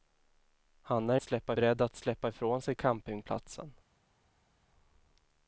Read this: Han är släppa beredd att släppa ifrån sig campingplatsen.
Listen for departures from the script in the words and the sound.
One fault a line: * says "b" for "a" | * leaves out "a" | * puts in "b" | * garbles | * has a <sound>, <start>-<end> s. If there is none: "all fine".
all fine